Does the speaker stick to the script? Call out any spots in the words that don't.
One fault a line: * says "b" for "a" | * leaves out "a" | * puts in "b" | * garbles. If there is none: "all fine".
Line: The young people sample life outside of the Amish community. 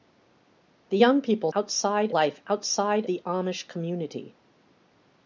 * says "outside" for "sample"
* leaves out "of"